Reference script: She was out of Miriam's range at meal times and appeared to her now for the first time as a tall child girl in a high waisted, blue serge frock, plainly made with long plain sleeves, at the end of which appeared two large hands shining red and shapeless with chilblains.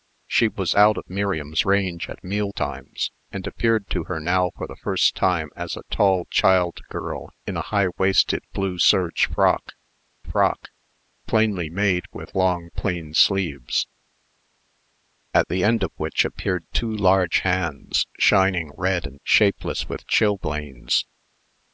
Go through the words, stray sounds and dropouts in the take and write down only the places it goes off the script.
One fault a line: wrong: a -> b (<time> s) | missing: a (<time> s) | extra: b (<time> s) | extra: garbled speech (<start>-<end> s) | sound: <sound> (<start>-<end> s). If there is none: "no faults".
extra: frock (10.2 s)